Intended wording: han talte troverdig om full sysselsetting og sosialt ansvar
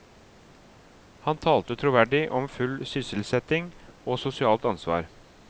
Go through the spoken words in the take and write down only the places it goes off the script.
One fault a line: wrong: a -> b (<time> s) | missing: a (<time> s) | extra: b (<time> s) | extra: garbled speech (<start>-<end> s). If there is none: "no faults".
no faults